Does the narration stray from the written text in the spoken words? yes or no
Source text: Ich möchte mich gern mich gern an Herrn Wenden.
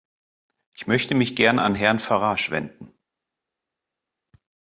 yes